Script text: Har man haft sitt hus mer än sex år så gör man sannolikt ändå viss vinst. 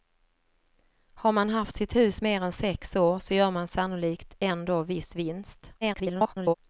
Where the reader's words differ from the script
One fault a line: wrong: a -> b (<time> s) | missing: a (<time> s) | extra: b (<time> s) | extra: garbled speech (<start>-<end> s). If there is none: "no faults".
extra: garbled speech (5.8-6.5 s)